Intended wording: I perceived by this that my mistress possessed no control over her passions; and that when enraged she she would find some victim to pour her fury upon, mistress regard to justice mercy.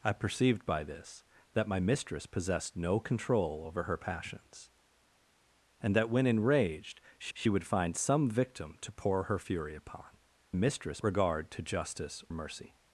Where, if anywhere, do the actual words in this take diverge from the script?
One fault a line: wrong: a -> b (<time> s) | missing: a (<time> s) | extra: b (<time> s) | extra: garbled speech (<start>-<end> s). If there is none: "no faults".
no faults